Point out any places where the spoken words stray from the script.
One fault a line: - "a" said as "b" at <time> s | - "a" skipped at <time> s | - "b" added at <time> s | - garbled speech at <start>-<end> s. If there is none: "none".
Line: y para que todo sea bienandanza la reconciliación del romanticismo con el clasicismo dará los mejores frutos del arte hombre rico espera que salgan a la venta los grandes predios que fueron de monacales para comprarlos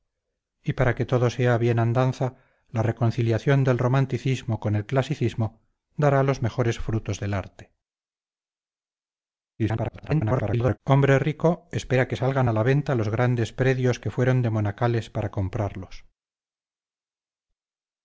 - garbled speech at 9.6-10.8 s